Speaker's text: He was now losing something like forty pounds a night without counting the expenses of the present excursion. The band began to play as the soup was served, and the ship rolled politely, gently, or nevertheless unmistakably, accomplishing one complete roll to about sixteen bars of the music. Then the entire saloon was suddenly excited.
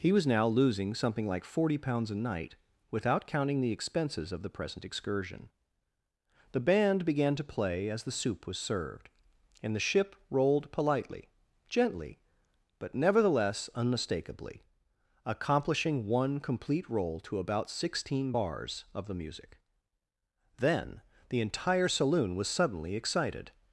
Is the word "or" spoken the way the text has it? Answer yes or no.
no